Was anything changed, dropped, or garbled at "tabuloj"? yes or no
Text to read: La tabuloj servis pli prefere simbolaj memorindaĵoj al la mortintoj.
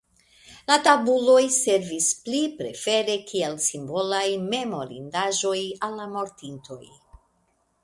no